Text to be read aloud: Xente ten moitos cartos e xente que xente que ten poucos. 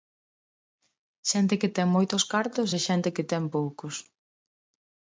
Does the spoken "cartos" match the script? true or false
true